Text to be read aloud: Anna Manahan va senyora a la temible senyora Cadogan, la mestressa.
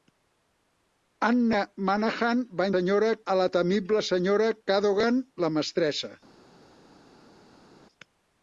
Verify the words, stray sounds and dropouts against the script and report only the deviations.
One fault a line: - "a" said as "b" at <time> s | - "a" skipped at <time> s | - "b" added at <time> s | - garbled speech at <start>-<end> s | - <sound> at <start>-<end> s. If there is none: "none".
none